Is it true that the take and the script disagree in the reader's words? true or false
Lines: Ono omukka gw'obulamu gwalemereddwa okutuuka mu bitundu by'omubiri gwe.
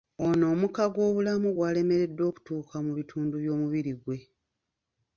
false